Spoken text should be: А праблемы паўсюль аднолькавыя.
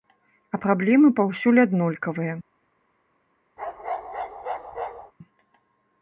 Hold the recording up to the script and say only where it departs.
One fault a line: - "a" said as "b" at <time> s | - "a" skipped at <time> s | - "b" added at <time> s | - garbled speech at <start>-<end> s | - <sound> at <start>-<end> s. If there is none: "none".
- bark at 3.6-5.1 s